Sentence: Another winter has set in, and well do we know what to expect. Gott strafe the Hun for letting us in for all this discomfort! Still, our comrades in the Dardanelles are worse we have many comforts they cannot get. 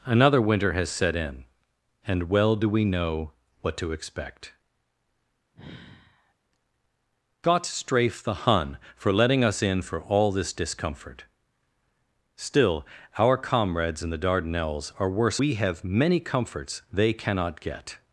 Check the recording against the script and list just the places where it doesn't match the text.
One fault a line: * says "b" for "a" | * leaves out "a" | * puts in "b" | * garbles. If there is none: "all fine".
all fine